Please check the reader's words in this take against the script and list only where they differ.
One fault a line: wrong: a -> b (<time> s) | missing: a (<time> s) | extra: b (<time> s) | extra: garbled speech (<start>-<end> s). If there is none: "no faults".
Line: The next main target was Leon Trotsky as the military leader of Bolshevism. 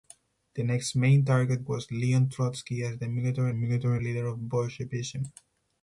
extra: military (3.5 s)